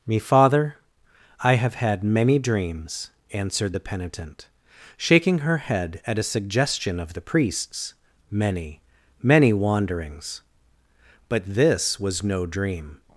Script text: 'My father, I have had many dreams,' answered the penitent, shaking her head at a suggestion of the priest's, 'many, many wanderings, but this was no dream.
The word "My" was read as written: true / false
false